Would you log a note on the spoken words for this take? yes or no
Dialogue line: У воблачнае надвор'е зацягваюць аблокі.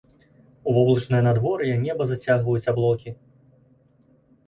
yes